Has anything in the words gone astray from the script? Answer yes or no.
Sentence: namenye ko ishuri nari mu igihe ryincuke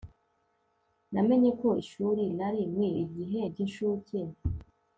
no